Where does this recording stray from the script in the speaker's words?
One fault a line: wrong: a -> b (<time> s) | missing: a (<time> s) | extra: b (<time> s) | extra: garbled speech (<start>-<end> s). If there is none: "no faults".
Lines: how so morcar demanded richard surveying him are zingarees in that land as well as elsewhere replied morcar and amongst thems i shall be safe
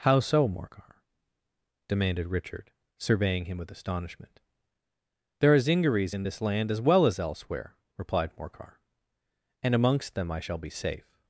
extra: with astonishment there (3.6 s)
wrong: that -> this (6.2 s)
wrong: thems -> them (10.1 s)